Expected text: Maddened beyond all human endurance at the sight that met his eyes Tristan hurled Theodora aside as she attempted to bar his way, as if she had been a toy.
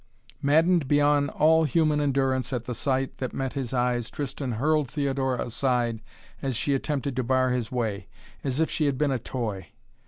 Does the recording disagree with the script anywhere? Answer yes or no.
no